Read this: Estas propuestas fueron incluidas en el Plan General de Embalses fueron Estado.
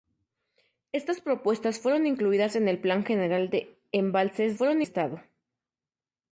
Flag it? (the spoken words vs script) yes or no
no